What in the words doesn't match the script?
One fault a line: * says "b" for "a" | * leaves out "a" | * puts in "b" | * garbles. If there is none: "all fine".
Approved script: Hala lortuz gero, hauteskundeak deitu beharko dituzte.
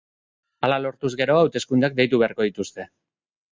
all fine